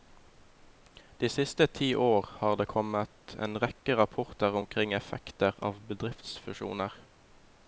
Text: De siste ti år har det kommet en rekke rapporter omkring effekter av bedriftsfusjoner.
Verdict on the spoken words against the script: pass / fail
pass